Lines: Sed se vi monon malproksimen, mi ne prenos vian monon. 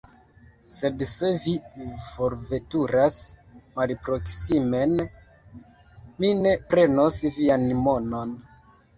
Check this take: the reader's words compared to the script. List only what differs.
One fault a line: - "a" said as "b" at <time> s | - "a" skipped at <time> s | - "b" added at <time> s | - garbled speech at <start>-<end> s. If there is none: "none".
- "monon" said as "forveturas" at 2.0 s